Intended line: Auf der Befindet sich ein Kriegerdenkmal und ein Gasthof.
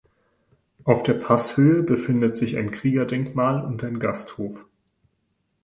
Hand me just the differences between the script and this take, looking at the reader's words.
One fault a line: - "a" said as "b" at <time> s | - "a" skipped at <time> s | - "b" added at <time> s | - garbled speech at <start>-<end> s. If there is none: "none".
- "Passhöhe" added at 1.1 s